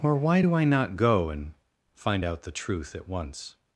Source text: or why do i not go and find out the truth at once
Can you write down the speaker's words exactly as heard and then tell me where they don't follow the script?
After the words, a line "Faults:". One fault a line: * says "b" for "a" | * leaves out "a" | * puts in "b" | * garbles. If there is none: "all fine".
or why do i not go and find out the truth at once
Faults:
all fine